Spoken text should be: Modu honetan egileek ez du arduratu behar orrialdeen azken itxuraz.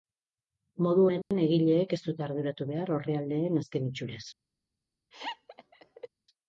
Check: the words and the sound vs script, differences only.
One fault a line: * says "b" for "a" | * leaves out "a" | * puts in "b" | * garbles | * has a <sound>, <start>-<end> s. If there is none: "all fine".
* has a dropout, 1.2-1.3 s
* says "dute" for "du"
* has a laugh, 5.1-6.1 s